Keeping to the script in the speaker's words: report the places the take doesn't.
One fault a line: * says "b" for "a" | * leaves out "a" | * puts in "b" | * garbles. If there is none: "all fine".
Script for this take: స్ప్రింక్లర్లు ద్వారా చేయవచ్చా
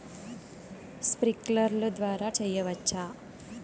all fine